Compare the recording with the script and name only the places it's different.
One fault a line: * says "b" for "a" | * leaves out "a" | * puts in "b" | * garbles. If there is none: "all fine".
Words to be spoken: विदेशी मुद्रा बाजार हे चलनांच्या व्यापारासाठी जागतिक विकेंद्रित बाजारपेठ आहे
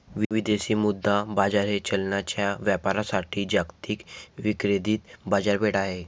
all fine